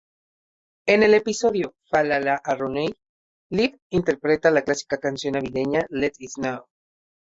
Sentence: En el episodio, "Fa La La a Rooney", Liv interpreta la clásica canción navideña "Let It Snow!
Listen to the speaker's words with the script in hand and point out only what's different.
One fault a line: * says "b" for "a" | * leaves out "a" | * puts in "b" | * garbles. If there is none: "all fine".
all fine